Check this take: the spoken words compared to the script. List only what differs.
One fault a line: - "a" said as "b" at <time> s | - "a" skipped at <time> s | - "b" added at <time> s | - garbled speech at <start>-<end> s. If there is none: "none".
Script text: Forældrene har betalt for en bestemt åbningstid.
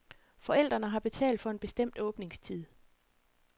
none